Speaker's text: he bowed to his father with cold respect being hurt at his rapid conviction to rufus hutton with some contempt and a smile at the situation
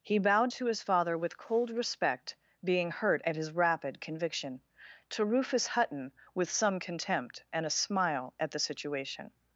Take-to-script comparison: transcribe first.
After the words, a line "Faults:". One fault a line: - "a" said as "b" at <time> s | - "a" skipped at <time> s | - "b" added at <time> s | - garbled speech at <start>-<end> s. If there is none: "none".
he bowed to his father with cold respect being hurt at his rapid conviction to rufus hutton with some contempt and a smile at the situation
Faults:
none